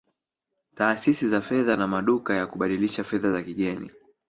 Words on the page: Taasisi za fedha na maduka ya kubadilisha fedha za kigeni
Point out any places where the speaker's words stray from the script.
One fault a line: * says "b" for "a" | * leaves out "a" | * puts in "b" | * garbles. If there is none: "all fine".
all fine